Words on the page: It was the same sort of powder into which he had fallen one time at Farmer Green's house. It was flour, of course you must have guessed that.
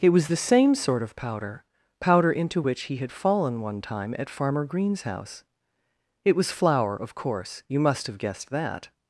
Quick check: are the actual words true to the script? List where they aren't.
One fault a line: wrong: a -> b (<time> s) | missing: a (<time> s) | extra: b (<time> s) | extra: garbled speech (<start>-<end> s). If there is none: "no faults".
extra: powder (2.0 s)